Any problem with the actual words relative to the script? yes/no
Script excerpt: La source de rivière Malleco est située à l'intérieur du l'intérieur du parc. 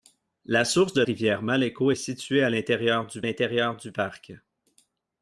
no